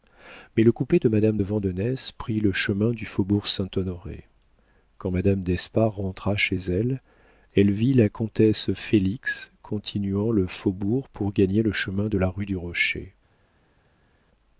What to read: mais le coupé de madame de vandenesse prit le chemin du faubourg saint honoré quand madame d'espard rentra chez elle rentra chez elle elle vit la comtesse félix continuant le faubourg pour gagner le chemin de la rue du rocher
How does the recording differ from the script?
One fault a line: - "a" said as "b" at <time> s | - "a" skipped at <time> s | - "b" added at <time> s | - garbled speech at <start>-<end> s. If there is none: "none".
- "rentra chez elle" skipped at 7.0 s